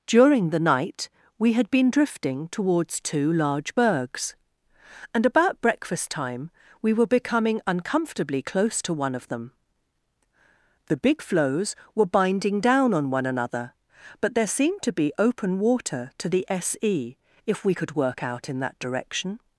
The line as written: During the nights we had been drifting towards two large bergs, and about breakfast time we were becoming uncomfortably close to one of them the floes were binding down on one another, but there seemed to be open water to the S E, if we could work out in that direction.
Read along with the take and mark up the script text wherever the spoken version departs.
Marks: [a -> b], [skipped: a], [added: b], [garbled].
During the [nights -> night] we had been drifting towards two large bergs, and about breakfast time we were becoming uncomfortably close to one of them the [added: big] floes were binding down on one another, but there seemed to be open water to the S E, if we could work out in that direction.